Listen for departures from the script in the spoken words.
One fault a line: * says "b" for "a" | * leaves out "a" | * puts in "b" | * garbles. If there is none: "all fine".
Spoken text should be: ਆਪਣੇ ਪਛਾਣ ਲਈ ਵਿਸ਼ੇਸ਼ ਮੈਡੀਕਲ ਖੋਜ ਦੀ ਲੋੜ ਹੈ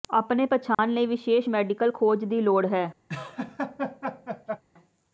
all fine